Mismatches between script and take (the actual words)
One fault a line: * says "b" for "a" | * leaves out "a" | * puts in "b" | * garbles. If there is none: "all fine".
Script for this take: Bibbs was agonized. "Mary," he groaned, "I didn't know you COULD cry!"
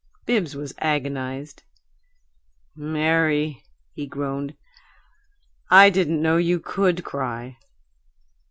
all fine